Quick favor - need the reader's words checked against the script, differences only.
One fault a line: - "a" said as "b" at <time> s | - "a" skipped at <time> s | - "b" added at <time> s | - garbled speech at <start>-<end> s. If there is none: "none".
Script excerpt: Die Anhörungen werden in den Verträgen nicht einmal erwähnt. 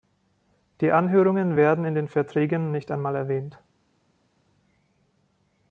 none